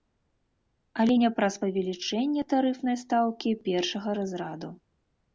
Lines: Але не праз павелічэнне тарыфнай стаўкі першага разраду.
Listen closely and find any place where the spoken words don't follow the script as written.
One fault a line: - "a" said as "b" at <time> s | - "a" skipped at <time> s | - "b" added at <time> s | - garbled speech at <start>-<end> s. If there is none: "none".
none